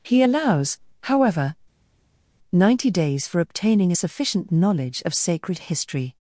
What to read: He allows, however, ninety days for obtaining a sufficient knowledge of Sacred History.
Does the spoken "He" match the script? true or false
true